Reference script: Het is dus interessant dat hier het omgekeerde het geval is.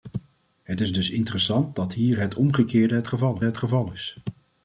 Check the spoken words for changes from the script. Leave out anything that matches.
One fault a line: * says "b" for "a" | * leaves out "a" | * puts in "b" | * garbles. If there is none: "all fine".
* puts in "het geval"